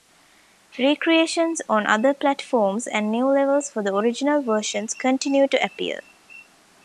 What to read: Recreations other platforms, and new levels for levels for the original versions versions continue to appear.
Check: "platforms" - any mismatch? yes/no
no